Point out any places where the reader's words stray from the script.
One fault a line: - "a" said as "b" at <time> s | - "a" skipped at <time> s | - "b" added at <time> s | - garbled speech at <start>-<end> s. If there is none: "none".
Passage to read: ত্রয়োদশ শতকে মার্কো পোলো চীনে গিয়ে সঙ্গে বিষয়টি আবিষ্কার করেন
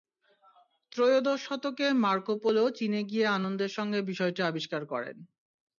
- "আনন্দের" added at 3.3 s